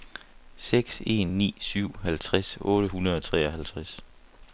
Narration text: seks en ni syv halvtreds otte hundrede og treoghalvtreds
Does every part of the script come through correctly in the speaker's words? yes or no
yes